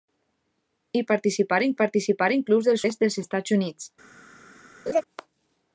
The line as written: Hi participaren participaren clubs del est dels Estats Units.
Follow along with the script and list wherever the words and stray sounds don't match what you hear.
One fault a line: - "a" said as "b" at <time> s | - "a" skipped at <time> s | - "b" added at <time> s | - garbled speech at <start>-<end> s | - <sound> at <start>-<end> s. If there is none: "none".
- laugh at 4.9-5.0 s